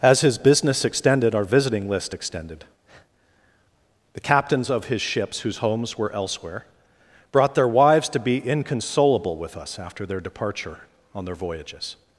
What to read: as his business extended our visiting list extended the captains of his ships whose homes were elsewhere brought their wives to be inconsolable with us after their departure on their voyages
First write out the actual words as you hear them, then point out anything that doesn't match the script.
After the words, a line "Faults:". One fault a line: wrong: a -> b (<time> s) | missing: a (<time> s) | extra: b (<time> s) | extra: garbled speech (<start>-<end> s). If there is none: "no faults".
as his business extended our visiting list extended the captains of his ships whose homes were elsewhere brought their wives to be inconsolable with us after their departure on their voyages
Faults:
no faults